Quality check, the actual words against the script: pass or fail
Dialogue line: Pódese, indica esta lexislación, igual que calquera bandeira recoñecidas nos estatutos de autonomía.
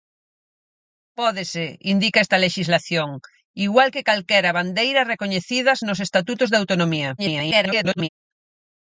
fail